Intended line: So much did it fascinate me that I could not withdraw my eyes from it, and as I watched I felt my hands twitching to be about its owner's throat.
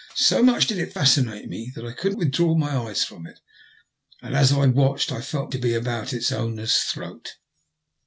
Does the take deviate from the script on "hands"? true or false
true